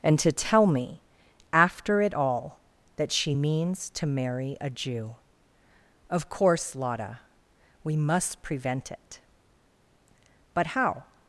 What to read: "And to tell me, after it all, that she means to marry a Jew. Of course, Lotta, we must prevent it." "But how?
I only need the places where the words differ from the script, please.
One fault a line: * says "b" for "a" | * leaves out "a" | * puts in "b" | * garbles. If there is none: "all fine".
all fine